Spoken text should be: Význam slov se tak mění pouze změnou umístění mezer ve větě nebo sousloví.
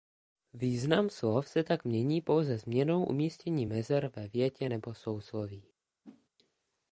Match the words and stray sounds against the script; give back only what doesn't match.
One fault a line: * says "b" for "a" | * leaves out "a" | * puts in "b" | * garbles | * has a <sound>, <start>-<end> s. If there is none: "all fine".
* has a whoosh, 6.0-6.3 s